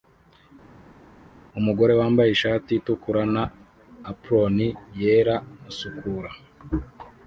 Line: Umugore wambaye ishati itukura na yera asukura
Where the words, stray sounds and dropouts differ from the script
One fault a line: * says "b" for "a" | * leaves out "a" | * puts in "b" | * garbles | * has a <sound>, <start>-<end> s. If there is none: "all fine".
* puts in "apron"